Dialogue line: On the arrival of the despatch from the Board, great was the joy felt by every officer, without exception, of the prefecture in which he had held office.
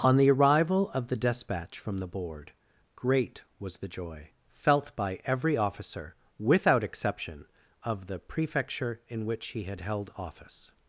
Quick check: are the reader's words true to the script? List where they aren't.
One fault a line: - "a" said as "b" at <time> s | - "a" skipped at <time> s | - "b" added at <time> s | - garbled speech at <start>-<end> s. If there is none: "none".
none